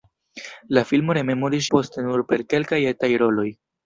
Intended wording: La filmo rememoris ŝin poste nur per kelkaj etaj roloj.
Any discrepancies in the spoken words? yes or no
yes